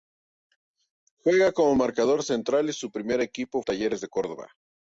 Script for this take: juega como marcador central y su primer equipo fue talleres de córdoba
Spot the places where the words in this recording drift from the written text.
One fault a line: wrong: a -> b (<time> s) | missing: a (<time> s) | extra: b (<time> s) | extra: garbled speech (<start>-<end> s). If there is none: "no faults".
missing: fue (3.6 s)